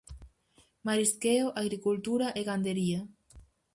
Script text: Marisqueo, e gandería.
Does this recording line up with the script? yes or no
no